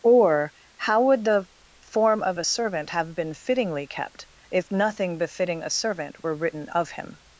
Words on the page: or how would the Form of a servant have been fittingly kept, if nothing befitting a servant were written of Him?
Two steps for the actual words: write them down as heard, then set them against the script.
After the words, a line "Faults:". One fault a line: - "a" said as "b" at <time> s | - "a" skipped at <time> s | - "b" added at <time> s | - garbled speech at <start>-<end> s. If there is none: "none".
or how would the Form of a servant have been fittingly kept, if nothing befitting a servant were written of Him?
Faults:
none